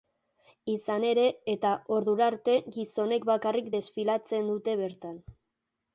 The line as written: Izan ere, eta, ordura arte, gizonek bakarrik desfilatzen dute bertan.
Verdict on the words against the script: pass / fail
pass